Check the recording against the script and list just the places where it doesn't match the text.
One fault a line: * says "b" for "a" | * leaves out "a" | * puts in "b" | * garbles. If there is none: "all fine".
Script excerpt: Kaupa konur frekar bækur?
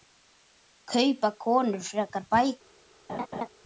all fine